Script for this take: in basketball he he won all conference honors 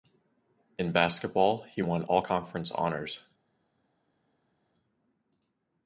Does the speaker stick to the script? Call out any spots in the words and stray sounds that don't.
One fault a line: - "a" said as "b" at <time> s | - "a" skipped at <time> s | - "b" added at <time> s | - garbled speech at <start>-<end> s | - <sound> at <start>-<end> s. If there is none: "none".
- "he" skipped at 1.8 s